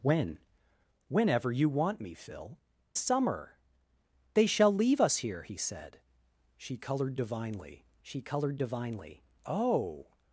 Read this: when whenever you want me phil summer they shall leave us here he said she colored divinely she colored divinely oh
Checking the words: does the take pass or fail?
pass